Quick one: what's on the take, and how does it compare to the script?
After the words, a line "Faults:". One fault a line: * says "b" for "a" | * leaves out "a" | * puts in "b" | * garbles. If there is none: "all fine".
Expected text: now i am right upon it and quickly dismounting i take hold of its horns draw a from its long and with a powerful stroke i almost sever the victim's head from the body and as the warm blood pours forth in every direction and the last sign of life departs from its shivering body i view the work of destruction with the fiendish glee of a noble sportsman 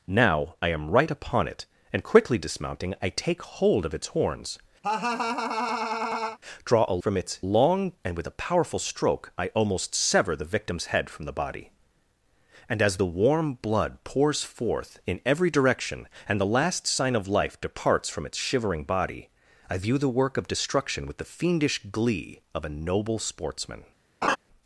now i am right upon it and quickly dismounting i take hold of its horns draw a from its long and with a powerful stroke i almost sever the victim's head from the body and as the warm blood pours forth in every direction and the last sign of life departs from its shivering body i view the work of destruction with the fiendish glee of a noble sportsman
Faults:
all fine